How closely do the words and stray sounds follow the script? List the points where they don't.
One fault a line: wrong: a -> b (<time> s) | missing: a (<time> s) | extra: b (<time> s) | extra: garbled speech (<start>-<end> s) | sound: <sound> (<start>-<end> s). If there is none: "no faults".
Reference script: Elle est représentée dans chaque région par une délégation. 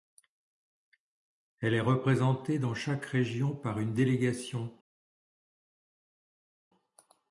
no faults